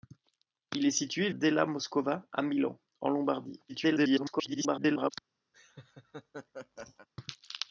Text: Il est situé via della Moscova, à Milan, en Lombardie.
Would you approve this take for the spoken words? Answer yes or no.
no